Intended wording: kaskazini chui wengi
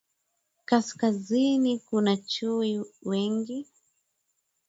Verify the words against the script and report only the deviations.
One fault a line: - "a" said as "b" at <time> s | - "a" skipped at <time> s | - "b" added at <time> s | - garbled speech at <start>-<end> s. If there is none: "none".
- "kuna" added at 1.8 s